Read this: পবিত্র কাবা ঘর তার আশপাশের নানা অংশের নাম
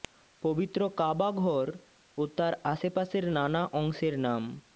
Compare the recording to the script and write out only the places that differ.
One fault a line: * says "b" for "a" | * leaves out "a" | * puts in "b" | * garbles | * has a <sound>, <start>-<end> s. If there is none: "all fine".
* puts in "ও"